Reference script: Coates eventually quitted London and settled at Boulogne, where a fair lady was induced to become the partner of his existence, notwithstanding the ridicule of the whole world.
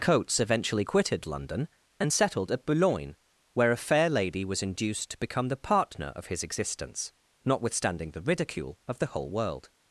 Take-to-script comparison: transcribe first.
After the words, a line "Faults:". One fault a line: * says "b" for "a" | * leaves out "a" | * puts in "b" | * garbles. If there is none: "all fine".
Coates eventually quitted London and settled at Boulogne, where a fair lady was induced to become the partner of his existence, notwithstanding the ridicule of the whole world.
Faults:
all fine